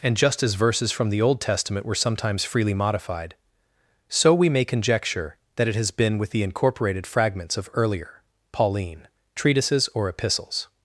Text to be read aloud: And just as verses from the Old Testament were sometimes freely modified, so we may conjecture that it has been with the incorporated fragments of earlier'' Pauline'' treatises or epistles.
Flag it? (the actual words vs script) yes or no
no